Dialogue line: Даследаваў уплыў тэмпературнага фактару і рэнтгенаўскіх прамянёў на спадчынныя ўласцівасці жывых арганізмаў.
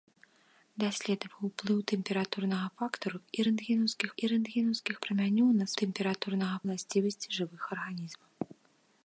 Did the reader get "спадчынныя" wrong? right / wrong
wrong